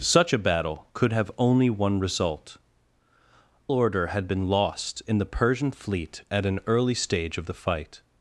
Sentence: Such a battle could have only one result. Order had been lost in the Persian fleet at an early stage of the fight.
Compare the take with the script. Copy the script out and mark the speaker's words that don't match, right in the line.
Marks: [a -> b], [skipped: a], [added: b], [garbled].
Such a battle could have only one result. Order had been lost in the Persian fleet at an early stage of the fight.